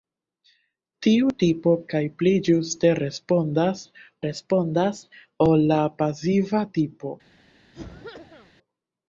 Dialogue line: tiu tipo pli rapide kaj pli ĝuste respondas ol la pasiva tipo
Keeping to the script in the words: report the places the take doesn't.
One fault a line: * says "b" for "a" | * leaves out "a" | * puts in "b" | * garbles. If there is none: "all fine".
* leaves out "pli rapide"
* puts in "respondas"